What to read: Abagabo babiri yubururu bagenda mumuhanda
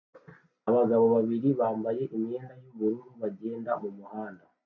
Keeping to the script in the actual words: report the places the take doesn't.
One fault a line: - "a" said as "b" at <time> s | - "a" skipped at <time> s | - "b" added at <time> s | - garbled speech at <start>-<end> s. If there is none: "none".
- "bambaye imyenda" added at 1.6 s